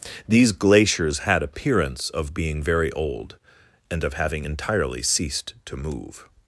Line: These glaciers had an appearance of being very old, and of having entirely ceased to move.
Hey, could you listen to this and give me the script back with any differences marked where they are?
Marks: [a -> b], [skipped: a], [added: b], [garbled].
These glaciers had [skipped: an] appearance of being very old, and of having entirely ceased to move.